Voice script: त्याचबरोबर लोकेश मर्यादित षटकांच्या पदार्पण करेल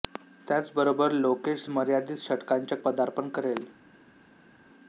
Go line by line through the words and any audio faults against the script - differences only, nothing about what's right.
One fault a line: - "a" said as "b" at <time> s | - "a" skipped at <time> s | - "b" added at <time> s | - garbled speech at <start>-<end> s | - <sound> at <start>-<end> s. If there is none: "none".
none